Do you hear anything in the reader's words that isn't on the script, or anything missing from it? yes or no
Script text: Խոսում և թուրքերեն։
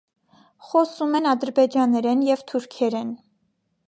yes